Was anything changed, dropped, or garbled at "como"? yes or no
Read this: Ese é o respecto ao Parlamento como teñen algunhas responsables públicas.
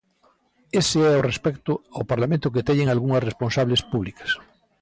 yes